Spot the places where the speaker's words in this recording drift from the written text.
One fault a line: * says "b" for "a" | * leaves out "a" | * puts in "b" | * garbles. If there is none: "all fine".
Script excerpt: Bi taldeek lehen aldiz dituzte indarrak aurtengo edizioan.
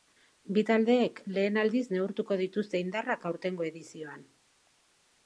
* puts in "neurtuko"